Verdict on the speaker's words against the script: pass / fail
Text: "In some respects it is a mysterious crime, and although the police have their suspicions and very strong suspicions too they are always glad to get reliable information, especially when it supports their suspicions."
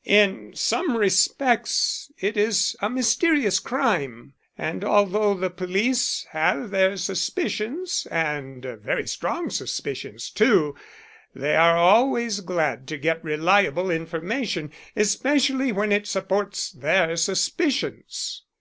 pass